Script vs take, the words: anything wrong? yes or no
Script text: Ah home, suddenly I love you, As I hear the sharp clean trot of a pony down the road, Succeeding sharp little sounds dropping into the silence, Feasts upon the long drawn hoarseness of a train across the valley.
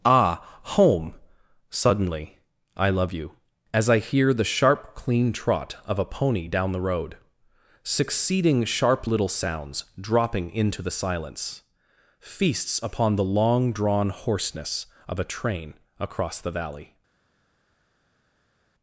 no